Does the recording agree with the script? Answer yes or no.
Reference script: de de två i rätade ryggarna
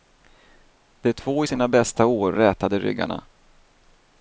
no